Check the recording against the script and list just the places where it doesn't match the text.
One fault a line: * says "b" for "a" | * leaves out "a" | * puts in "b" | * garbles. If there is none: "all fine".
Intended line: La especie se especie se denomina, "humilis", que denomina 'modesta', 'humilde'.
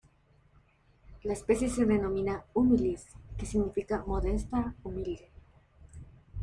* leaves out "especie se"
* says "significa" for "denomina"